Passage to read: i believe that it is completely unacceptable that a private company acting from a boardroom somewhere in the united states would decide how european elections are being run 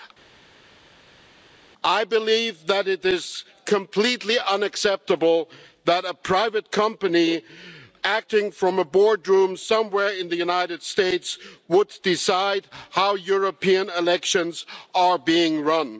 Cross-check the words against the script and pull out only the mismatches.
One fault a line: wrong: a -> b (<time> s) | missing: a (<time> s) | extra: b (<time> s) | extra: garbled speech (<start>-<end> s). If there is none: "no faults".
no faults